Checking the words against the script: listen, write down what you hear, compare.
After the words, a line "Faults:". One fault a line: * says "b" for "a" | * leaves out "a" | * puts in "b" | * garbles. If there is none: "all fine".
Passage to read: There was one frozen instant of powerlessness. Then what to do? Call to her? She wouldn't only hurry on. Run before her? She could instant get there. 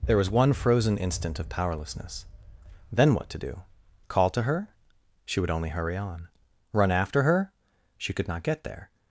There was one frozen instant of powerlessness. Then what to do? Call to her? She would only hurry on. Run after her? She could not get there.
Faults:
* says "would" for "wouldn't"
* says "after" for "before"
* says "not" for "instant"